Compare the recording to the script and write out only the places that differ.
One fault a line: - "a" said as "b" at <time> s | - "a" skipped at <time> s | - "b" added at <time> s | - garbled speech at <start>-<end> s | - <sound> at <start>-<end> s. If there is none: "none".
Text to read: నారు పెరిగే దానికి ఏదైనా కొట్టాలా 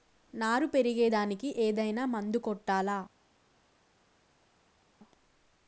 - "మందు" added at 2.1 s